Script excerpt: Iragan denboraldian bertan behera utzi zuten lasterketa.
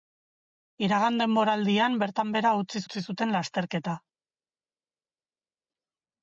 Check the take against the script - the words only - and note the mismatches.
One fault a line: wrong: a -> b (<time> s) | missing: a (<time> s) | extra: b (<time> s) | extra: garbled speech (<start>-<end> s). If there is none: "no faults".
extra: utzi (2.9 s)